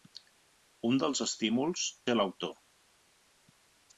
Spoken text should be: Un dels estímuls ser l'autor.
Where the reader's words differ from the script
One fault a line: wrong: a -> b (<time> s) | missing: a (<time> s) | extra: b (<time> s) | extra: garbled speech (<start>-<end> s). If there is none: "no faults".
no faults